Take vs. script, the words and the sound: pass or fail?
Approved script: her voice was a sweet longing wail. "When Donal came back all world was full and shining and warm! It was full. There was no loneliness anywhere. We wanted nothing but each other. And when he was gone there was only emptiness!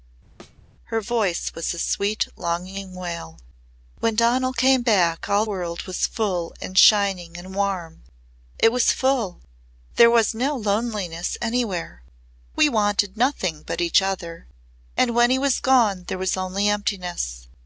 fail